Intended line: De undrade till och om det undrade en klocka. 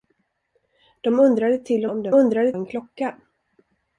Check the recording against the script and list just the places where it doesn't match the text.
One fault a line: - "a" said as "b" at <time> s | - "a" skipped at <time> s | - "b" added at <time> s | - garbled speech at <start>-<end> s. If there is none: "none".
none